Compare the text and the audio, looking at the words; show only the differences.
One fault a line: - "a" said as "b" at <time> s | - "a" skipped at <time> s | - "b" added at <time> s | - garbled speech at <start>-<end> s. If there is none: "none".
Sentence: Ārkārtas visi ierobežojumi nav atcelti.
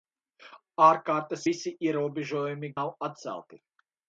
none